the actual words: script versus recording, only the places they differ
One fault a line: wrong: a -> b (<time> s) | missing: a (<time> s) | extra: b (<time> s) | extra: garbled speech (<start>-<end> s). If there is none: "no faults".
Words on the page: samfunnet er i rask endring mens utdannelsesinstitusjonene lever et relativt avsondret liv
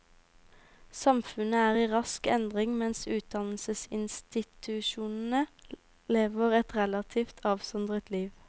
no faults